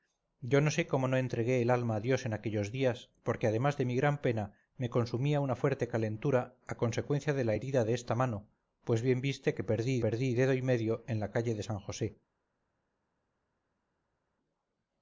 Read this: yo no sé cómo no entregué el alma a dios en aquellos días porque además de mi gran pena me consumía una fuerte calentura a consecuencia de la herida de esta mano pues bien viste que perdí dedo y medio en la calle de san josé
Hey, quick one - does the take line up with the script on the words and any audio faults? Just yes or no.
no